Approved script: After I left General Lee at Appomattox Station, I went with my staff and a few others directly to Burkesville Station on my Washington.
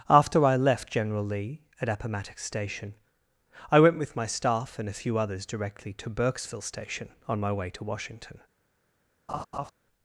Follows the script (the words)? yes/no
no